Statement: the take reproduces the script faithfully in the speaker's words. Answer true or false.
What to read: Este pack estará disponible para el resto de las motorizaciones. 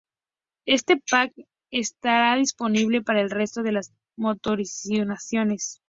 true